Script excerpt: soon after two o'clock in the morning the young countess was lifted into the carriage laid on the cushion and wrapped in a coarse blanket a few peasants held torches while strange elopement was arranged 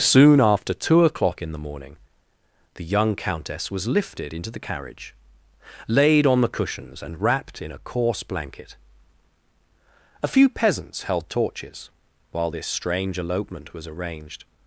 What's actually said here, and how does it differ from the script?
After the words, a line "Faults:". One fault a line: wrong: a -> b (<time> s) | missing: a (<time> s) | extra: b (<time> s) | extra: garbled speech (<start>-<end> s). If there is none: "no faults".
soon after two o'clock in the morning the young countess was lifted into the carriage laid on the cushions and wrapped in a coarse blanket a few peasants held torches while this strange elopement was arranged
Faults:
wrong: cushion -> cushions (6.5 s)
extra: this (12.5 s)